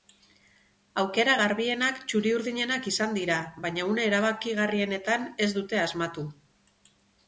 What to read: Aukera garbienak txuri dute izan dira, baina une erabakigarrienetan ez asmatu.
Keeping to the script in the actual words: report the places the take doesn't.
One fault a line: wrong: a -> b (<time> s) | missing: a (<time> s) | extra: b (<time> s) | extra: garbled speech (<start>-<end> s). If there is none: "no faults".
wrong: dute -> urdinenak (2.4 s)
extra: dute (5.6 s)